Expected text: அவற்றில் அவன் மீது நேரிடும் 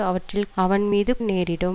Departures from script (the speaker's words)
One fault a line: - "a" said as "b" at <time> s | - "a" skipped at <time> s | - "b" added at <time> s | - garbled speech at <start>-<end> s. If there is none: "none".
none